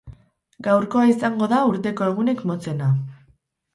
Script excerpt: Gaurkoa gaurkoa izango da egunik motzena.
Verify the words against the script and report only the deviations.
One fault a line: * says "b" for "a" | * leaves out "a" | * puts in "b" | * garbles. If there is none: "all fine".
* leaves out "gaurkoa"
* puts in "urteko"